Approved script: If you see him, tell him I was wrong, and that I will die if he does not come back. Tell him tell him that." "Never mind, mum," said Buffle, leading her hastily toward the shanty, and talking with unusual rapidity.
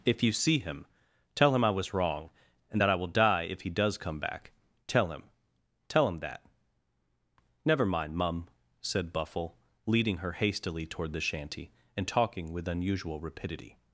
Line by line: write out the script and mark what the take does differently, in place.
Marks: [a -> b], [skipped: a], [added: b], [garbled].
If you see him, tell him I was wrong, and that I will die if he does [skipped: not] come back. Tell him tell him that." "Never mind, mum," said Buffle, leading her hastily toward the shanty, and talking with unusual rapidity.